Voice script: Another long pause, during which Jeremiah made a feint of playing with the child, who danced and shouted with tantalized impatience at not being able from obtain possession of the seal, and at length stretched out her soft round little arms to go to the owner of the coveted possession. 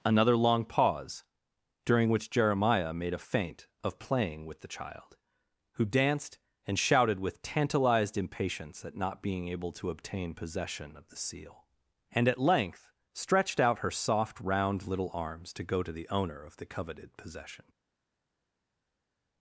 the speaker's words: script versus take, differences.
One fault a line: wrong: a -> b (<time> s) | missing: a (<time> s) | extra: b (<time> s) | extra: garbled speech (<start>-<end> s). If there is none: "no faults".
wrong: from -> to (9.7 s)